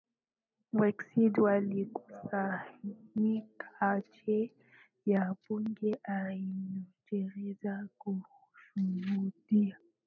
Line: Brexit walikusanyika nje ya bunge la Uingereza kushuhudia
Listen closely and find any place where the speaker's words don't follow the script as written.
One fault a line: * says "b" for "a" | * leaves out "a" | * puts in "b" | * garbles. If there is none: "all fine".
all fine